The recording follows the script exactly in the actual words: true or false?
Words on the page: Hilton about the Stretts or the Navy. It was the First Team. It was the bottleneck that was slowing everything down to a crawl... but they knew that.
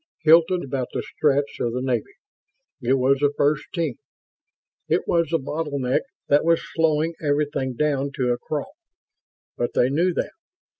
true